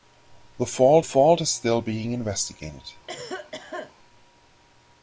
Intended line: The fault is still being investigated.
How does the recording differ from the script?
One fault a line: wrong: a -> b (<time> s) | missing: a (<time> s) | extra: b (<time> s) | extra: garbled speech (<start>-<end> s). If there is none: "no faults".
extra: fault (1.0 s)